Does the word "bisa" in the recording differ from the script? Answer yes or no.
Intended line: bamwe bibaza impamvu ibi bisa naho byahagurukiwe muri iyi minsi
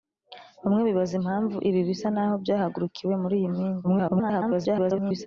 no